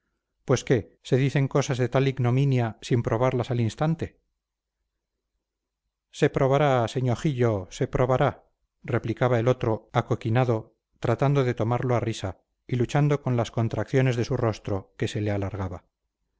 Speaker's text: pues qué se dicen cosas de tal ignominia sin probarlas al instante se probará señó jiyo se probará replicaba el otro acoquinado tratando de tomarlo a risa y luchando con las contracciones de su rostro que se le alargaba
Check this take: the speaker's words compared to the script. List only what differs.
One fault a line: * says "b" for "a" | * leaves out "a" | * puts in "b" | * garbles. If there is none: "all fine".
all fine